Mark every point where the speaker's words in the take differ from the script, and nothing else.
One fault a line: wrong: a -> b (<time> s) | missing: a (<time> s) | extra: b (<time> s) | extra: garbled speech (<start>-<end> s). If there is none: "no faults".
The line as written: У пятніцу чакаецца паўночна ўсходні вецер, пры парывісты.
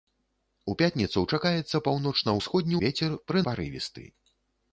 no faults